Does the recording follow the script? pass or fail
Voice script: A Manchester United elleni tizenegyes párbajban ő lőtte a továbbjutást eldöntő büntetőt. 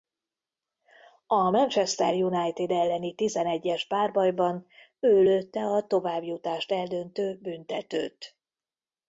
pass